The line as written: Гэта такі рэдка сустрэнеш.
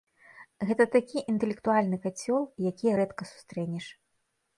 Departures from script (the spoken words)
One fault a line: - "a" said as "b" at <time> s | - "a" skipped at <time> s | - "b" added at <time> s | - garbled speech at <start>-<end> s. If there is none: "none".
- "інтэлектуальны кацёл якія" added at 1.3 s